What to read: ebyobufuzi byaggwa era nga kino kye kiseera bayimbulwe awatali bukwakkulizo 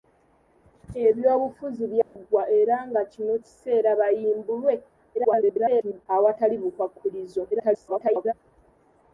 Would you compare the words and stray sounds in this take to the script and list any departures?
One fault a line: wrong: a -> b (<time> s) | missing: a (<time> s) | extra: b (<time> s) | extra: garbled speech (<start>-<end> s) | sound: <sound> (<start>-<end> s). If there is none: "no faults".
sound: dropout (2.0-2.2 s)
missing: kye (3.3 s)
extra: garbled speech (5.1-6.1 s)
extra: garbled speech (7.5-8.3 s)